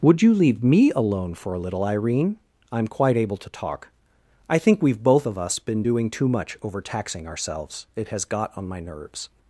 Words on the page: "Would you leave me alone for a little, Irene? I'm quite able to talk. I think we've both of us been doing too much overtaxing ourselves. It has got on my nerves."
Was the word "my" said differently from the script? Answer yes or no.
no